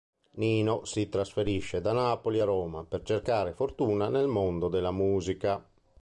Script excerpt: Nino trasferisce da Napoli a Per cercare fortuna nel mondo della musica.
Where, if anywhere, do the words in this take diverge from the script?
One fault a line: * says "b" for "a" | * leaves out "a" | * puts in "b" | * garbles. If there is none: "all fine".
* puts in "si"
* puts in "Roma"